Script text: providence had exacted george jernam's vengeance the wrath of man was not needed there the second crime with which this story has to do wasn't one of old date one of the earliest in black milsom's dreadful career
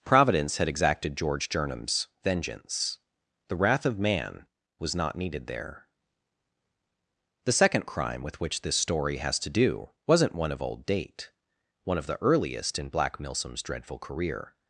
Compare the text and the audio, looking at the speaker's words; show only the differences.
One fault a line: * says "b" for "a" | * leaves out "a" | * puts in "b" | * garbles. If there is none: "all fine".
all fine